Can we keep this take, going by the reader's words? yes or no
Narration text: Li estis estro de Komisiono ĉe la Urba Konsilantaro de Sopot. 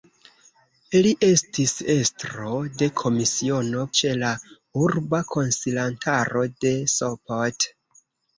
yes